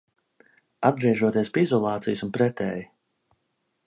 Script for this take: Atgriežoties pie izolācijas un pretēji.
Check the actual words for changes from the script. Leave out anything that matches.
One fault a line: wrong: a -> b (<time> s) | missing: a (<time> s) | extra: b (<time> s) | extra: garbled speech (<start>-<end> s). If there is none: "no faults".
no faults